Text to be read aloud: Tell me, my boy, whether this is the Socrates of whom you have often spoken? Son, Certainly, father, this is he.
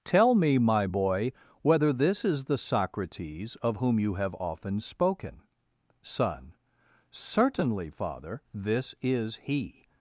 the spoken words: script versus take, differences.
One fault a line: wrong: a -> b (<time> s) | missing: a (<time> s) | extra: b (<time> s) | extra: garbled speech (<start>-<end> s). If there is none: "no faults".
no faults